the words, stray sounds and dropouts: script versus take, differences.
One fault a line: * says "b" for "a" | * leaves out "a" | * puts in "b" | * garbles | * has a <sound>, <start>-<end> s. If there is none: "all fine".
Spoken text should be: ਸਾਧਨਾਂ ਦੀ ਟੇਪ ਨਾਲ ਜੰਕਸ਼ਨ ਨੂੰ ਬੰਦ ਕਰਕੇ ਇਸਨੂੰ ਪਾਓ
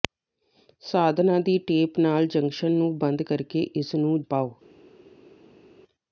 all fine